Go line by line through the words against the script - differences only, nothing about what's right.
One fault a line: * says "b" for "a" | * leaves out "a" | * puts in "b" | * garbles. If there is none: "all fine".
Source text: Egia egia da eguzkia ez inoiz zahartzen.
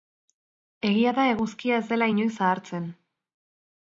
* leaves out "egia"
* puts in "dela"